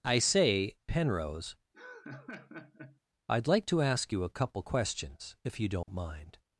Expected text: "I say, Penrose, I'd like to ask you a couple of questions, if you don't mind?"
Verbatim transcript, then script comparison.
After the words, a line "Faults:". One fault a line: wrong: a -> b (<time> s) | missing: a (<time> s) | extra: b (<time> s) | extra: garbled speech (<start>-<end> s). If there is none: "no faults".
"I say, Penrose, I'd like to ask you a couple questions, if you don't mind?"
Faults:
missing: of (4.6 s)